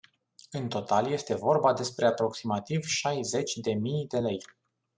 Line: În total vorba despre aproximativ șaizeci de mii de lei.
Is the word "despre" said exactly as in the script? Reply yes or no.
yes